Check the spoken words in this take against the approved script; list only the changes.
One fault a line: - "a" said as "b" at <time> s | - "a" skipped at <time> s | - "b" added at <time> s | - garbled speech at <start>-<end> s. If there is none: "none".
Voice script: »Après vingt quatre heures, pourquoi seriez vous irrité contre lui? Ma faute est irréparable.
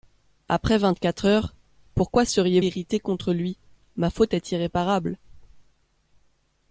- "vous" skipped at 2.6 s